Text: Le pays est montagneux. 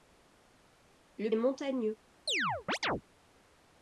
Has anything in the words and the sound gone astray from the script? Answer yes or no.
yes